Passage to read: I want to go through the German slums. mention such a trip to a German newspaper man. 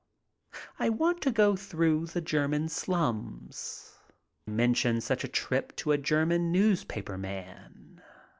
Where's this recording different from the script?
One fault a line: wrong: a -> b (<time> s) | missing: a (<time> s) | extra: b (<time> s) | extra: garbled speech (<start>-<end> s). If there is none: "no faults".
no faults